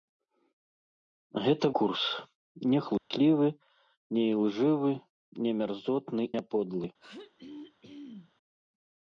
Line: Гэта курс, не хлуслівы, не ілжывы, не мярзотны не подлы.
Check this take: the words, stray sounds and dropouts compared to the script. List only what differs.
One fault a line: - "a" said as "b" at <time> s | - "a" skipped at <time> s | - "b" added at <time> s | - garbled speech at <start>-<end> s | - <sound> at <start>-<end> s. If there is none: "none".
- dropout at 3.0-3.1 s
- throat clearing at 7.0-8.3 s